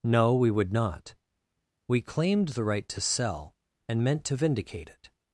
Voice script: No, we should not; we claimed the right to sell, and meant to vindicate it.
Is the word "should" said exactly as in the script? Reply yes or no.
no